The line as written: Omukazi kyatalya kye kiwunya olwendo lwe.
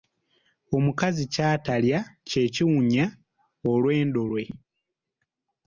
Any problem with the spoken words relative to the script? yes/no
no